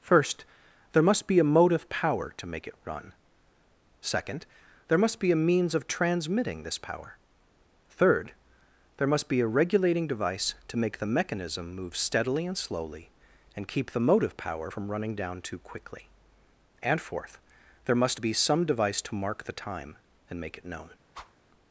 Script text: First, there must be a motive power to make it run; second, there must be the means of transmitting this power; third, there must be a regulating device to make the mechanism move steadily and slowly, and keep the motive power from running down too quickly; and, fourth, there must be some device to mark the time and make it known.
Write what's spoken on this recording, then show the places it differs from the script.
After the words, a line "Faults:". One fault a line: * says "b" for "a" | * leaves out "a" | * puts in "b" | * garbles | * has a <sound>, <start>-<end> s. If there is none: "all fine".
First, there must be a motive power to make it run; second, there must be a means of transmitting this power; third, there must be a regulating device to make the mechanism move steadily and slowly, and keep the motive power from running down too quickly; and, fourth, there must be some device to mark the time and make it known.
Faults:
* says "a" for "the"
* has a whoosh, 21.1-21.4 s